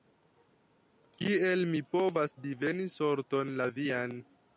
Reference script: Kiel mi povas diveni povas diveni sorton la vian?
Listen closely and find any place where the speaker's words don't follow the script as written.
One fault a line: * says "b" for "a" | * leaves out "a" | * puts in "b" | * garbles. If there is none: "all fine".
* leaves out "povas diveni"